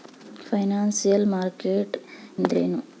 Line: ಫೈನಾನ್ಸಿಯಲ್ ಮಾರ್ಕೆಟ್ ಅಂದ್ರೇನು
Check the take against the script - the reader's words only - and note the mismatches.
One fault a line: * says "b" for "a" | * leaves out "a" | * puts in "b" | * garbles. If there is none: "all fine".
all fine